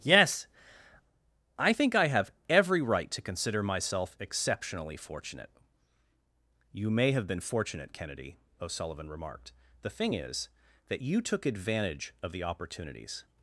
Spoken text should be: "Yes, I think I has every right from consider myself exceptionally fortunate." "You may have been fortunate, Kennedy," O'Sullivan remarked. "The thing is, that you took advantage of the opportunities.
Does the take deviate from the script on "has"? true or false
true